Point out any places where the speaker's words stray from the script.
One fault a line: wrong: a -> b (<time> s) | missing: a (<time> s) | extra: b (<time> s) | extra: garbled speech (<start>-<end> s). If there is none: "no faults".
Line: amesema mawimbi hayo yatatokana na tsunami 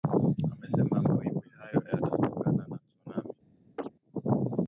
no faults